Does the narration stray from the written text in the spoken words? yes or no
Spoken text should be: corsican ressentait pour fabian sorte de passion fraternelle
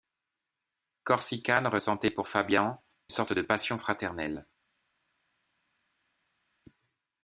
no